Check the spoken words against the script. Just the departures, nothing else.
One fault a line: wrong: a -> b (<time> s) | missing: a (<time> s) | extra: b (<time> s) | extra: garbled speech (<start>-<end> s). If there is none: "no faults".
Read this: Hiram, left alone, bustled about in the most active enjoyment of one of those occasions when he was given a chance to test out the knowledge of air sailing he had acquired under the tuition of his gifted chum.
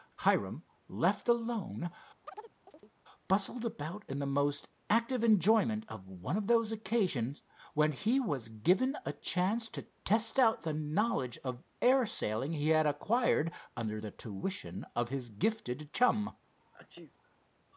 no faults